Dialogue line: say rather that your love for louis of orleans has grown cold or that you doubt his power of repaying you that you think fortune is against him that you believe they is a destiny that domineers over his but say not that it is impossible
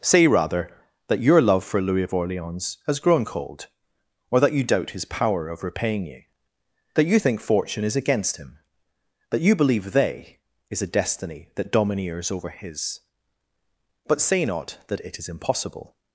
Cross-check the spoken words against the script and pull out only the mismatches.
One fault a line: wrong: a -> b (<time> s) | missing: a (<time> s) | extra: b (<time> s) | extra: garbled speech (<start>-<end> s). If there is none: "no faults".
no faults